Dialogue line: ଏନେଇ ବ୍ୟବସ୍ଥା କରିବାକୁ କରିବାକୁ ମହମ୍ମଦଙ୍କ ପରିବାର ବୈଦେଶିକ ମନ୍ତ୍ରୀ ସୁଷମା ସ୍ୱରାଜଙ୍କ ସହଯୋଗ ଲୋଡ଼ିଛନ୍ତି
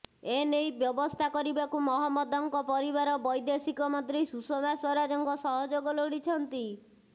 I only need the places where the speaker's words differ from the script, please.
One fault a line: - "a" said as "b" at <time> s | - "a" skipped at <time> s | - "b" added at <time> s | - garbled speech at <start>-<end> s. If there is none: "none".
- "କରିବାକୁ" skipped at 1.8 s